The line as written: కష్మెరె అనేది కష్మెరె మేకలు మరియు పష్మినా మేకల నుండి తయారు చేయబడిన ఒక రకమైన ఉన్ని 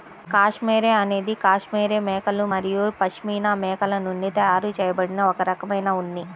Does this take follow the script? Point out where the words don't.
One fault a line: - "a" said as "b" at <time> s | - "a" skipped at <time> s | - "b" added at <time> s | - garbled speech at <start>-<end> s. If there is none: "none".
none